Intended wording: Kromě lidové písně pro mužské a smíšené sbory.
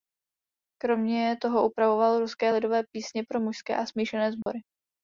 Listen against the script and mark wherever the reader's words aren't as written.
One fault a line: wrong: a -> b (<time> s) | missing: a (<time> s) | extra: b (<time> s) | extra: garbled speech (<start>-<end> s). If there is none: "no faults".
extra: toho upravoval ruské (1.4 s)